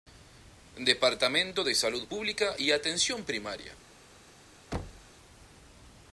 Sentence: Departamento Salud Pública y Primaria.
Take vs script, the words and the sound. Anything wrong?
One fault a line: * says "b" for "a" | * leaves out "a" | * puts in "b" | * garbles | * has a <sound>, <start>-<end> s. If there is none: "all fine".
* puts in "de"
* puts in "Atención"
* has a thud, 4.7-5.1 s